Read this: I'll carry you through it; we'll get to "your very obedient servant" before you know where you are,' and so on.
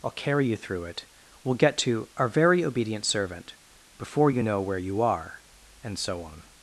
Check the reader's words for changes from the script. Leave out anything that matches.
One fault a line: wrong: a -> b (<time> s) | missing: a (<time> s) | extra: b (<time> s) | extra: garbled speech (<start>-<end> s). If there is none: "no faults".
wrong: your -> our (2.2 s)